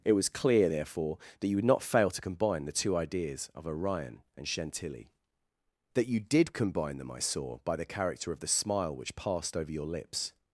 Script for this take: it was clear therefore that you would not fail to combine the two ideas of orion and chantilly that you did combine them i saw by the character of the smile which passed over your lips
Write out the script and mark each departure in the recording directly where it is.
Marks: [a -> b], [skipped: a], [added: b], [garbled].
it was clear therefore that you would not fail to combine the two ideas of orion and chantilly that you did combine them i saw by the character of the smile which passed over your lips